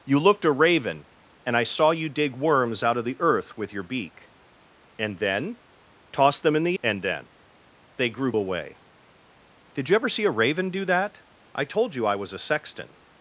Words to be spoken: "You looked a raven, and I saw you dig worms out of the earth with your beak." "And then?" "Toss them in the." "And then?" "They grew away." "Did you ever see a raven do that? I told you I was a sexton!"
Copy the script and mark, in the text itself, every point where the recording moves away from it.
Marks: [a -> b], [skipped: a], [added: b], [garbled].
"You looked a raven, and I saw you dig worms out of the earth with your beak." "And then?" "Toss them in the." "And then?" "They grew away." "Did you ever see a raven do that? I told you I was a sexton!"